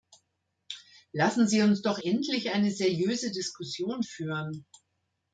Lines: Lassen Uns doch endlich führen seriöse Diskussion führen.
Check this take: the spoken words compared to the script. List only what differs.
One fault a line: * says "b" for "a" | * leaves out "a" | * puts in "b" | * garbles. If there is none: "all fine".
* puts in "Sie"
* says "eine" for "führen"